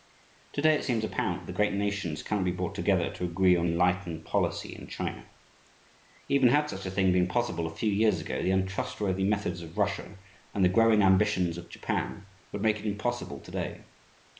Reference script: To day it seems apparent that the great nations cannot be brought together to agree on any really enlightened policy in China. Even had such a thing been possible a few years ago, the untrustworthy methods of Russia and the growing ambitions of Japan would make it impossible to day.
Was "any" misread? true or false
true